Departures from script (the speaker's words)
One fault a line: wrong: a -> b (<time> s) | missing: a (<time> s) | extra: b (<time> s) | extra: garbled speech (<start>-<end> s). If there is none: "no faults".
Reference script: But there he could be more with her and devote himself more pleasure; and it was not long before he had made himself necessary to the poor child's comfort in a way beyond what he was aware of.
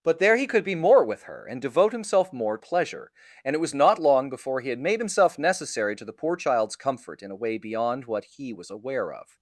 no faults